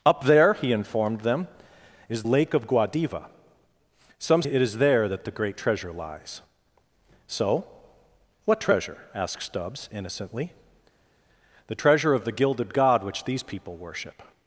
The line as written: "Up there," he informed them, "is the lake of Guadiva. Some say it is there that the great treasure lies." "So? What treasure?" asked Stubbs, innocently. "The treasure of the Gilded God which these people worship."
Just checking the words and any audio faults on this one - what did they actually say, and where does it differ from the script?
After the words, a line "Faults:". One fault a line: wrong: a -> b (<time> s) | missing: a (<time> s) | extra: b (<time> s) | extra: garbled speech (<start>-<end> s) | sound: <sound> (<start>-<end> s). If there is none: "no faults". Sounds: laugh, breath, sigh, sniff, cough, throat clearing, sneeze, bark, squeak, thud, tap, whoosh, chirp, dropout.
"Up there," he informed them, "is lake of Guadiva. Some it is there that the great treasure lies." "So? What treasure?" asked Stubbs, innocently. "The treasure of the Gilded God which these people worship."
Faults:
missing: the (2.2 s)
missing: say (4.4 s)